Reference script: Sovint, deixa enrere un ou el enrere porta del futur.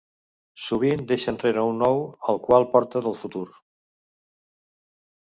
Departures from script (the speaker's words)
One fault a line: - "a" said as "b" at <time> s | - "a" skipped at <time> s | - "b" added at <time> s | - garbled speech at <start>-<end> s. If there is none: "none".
- "enrere" said as "qual" at 2.5 s